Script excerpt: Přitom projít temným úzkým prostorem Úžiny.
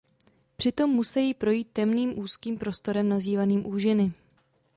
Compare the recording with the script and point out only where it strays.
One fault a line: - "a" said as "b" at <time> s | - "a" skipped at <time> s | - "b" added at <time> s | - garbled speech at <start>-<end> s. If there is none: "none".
- "musejí" added at 0.9 s
- "nazývaným" added at 3.1 s